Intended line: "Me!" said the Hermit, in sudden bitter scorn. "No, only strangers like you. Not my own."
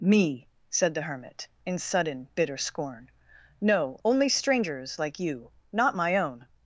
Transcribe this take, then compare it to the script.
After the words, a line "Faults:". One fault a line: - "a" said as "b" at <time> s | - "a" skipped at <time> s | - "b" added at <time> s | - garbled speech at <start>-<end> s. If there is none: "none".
"Me!" said the Hermit, in sudden bitter scorn. "No, only strangers like you. Not my own."
Faults:
none